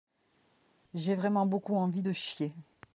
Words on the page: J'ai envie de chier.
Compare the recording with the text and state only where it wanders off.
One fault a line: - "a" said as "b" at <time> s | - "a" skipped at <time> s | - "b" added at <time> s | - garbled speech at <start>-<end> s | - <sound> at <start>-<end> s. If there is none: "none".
- "vraiment beaucoup" added at 1.1 s